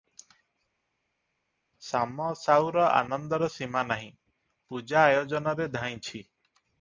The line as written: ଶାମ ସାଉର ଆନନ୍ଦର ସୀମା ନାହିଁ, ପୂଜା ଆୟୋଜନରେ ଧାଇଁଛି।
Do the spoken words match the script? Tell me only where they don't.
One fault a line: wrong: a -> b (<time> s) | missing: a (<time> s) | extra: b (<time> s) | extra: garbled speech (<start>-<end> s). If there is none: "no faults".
no faults